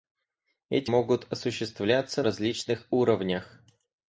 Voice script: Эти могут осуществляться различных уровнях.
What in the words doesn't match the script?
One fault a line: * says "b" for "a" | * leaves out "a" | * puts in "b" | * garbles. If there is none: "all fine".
all fine